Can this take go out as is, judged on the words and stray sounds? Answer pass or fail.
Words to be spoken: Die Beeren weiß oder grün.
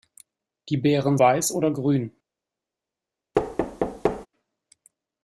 fail